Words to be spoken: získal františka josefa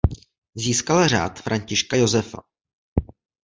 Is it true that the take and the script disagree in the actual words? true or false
true